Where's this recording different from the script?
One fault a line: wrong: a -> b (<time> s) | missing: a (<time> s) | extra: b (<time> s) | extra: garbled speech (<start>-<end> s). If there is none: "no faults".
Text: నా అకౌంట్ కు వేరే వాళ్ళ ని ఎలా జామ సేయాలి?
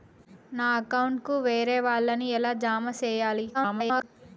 extra: garbled speech (3.5-4.0 s)